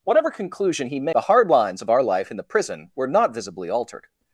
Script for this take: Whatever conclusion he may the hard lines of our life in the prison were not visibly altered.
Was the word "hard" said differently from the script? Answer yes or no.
no